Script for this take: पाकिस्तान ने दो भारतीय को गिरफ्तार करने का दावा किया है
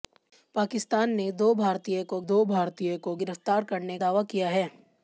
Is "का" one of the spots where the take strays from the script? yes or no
yes